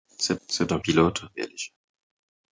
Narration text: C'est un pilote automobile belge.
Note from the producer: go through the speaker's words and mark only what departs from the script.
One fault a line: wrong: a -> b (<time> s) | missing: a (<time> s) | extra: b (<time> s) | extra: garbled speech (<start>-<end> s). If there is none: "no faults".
extra: c'est (0.5 s)
missing: automobile (1.2 s)